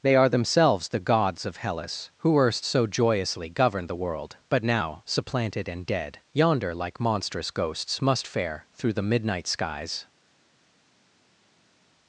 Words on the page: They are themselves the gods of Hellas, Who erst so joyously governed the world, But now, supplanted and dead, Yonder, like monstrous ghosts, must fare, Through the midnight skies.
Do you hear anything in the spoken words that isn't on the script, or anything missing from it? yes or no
no